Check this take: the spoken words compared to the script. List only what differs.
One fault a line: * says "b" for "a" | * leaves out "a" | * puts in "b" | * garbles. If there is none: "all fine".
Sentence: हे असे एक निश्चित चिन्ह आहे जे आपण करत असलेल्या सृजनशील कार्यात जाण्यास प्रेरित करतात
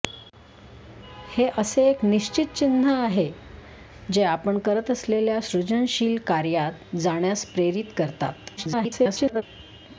* garbles